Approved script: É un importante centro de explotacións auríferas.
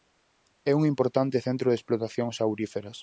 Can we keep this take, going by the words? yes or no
yes